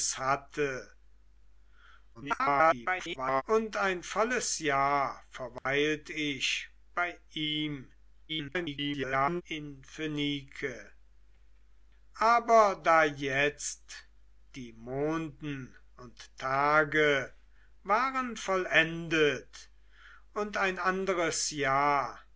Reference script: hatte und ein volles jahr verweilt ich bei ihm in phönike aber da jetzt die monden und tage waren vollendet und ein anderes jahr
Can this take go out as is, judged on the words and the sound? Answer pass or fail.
fail